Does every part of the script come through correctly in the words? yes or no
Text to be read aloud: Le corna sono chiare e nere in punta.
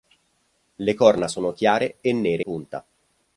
no